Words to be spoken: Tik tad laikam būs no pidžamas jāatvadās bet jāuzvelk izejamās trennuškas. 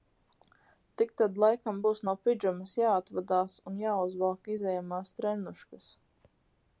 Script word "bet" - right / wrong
wrong